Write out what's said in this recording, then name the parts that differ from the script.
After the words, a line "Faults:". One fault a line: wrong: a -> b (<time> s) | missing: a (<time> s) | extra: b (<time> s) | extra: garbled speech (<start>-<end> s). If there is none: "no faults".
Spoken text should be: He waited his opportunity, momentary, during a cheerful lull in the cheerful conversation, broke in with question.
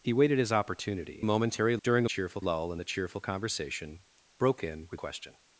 He waited his opportunity, momentary, during a cheerful lull in the cheerful conversation, broke in with question.
Faults:
no faults